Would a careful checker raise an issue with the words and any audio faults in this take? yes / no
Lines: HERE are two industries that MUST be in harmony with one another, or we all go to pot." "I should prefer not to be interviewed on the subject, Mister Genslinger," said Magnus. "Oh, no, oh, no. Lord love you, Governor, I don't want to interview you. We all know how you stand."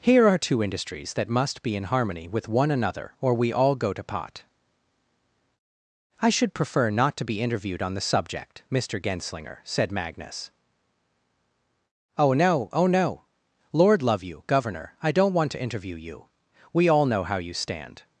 no